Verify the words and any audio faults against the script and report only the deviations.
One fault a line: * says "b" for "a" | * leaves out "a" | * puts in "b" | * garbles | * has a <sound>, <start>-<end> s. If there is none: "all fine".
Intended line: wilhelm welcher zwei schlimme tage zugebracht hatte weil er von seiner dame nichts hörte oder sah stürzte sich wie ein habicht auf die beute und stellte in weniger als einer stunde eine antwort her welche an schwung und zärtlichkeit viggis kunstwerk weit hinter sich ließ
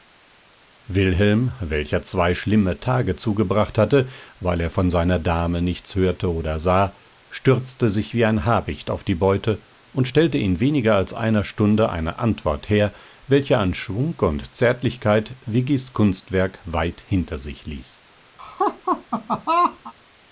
* has a laugh, 18.4-19.9 s